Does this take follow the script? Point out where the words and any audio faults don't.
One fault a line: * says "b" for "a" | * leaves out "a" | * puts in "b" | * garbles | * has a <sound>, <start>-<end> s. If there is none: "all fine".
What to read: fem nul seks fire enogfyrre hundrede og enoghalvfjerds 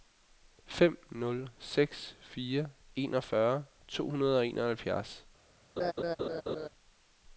* puts in "to"
* has a laugh, 5.8-6.7 s